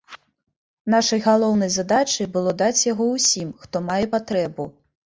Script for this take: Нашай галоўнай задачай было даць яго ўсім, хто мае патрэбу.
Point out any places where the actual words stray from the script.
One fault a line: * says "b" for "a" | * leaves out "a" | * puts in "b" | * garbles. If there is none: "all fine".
all fine